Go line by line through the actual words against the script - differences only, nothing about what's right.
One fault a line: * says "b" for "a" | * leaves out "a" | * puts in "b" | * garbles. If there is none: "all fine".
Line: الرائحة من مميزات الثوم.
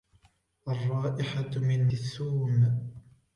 * leaves out "مميزات"